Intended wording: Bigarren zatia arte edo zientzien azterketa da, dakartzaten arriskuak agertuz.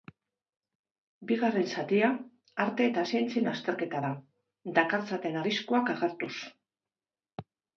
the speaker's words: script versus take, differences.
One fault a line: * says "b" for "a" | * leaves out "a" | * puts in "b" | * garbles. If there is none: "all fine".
* says "eta" for "edo"